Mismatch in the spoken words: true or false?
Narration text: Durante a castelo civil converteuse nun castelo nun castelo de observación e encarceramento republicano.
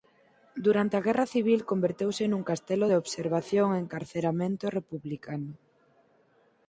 true